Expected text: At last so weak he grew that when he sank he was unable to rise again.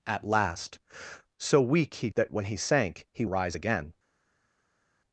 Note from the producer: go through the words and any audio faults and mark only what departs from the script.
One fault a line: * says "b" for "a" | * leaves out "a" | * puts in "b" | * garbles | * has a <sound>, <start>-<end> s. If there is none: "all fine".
* leaves out "grew"
* leaves out "was unable to"